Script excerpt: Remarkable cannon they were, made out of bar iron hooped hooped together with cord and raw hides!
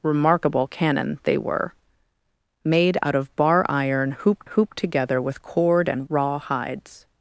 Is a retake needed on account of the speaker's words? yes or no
no